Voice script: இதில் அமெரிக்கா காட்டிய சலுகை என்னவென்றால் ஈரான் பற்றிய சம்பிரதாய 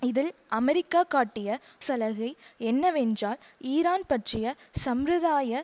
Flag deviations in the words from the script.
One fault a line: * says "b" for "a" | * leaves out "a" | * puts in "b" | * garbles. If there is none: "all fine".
all fine